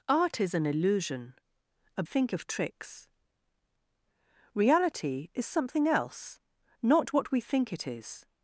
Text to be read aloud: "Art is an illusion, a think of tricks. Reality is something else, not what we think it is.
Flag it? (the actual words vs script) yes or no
no